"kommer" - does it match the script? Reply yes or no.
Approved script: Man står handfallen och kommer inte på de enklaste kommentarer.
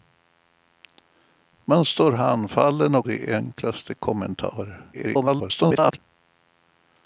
no